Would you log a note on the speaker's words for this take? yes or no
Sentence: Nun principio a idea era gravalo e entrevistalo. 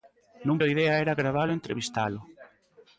yes